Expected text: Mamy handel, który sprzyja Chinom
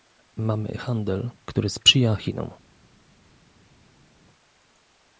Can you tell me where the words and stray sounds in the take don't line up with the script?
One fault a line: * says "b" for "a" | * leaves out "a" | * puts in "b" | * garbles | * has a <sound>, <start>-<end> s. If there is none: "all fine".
all fine